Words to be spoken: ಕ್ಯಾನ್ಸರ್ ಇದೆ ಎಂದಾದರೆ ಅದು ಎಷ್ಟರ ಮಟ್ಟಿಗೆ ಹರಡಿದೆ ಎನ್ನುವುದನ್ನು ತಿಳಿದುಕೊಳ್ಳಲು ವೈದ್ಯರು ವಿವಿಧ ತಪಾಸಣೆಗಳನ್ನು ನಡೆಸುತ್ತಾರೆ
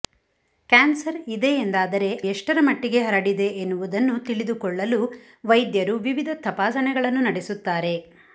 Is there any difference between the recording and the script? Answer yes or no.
yes